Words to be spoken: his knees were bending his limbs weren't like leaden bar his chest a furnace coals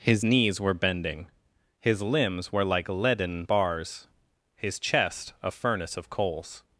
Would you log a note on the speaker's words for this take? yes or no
yes